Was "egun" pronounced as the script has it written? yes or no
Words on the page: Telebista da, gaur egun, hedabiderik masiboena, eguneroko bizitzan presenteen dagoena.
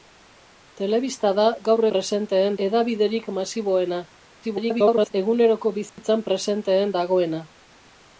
no